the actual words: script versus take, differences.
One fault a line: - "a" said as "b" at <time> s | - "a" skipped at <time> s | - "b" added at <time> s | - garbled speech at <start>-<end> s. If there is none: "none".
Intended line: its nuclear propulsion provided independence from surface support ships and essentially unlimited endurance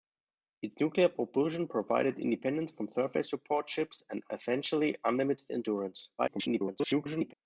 - garbled speech at 6.2-7.3 s